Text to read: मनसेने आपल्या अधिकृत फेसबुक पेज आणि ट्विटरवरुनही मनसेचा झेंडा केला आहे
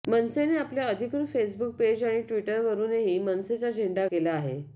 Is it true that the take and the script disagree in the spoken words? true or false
false